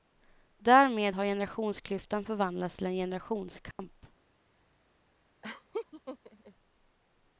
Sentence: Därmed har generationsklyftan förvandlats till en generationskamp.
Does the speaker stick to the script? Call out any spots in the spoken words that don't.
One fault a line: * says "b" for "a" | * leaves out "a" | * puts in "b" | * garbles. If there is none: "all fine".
all fine